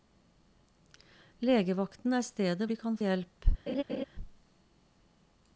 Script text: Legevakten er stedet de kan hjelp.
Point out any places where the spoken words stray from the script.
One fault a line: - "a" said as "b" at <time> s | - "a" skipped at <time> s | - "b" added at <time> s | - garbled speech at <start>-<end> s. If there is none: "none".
none